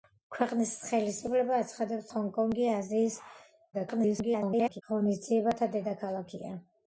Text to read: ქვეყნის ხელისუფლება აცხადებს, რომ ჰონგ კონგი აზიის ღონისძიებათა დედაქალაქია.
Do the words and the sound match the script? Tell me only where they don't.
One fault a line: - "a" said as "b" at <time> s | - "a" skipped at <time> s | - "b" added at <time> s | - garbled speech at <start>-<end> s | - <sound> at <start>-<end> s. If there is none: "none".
- "რომ" skipped at 2.1 s
- garbled speech at 3.7-4.8 s